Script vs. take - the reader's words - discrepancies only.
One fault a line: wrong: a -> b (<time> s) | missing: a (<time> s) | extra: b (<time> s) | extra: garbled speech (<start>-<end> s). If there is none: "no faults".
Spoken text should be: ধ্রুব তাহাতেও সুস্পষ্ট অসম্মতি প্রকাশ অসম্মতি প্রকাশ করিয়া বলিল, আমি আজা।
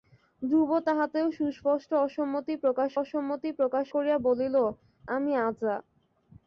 no faults